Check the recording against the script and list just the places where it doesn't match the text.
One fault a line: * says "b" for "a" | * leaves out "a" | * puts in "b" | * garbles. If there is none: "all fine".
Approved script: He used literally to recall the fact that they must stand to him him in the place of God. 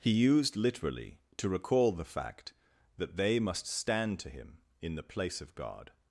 * leaves out "him"